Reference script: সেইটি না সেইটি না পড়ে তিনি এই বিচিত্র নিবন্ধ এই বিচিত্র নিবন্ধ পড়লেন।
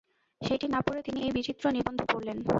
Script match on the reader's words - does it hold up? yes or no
no